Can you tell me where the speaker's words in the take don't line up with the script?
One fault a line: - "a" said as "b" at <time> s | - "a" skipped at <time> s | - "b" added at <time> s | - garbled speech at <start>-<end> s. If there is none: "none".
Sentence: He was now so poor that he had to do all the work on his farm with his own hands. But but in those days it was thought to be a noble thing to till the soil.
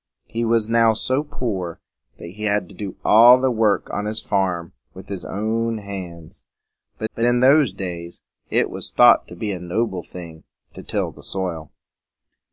none